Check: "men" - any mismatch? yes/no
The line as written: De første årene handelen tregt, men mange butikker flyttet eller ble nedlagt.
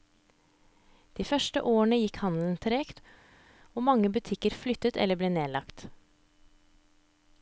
yes